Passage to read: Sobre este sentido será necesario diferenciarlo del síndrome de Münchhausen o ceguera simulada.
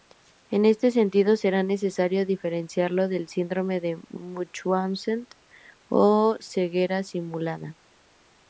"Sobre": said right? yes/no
no